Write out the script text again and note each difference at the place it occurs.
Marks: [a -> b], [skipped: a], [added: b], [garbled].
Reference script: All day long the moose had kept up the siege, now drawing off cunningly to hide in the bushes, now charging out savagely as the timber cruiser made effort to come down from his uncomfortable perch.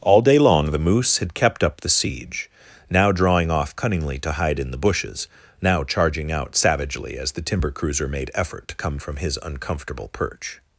All day long the moose had kept up the siege, now drawing off cunningly to hide in the bushes, now charging out savagely as the timber cruiser made effort to come [skipped: down] from his uncomfortable perch.